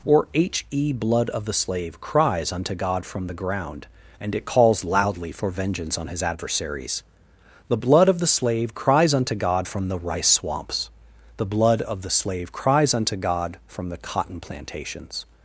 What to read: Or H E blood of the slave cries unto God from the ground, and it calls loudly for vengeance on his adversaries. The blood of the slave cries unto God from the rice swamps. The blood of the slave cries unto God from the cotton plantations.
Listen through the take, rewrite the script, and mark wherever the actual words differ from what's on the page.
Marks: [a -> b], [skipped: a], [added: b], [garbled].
Or H E blood of the slave cries unto God from the ground, and it calls loudly for vengeance on his adversaries. The blood of the slave cries unto God from the rice swamps. The blood of the slave cries unto God from the cotton plantations.